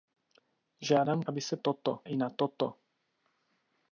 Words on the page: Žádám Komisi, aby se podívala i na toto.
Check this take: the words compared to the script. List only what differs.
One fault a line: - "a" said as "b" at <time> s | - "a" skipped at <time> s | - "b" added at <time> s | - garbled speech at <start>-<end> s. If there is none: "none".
- "Komisi" skipped at 1.2 s
- "podívala" said as "toto" at 1.5 s